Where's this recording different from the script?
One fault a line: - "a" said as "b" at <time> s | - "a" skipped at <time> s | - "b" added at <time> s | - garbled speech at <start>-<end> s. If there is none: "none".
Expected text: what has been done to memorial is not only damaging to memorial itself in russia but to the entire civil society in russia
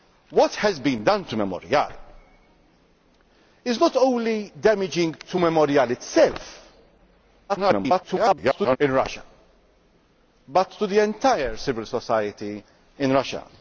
- garbled speech at 7.5-8.8 s